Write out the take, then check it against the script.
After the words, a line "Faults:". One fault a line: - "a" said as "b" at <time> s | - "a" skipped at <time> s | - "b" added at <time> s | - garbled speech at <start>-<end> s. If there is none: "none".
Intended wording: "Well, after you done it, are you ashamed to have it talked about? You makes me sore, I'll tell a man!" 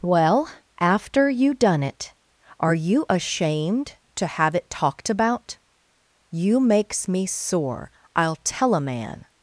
"Well, after you done it, are you ashamed to have it talked about? You makes me sore, I'll tell a man!"
Faults:
none